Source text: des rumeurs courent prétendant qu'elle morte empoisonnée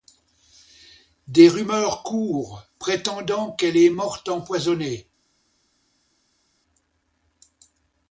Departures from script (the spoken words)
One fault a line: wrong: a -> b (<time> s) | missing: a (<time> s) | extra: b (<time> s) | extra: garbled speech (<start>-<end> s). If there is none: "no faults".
extra: est (3.8 s)